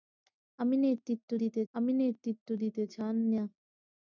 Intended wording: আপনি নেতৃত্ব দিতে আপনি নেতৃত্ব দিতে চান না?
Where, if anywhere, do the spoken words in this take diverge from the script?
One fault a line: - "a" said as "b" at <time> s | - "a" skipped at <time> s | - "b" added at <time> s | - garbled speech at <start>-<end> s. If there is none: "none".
none